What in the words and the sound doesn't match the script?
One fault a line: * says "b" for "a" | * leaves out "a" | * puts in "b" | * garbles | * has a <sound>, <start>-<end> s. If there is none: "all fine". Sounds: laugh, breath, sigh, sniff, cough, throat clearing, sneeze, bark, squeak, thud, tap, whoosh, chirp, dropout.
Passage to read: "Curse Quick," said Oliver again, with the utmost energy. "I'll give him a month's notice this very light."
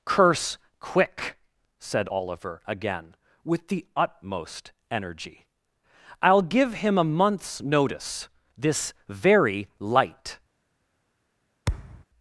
* has a thud, 11.7-12.0 s